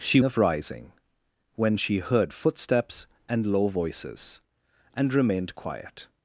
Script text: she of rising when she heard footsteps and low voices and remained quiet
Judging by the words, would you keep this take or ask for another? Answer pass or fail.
pass